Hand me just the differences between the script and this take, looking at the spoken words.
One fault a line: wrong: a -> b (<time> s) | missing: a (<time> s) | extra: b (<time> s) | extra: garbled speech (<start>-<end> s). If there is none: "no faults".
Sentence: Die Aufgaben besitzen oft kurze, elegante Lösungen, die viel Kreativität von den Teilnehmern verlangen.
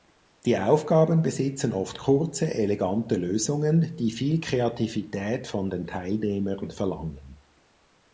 no faults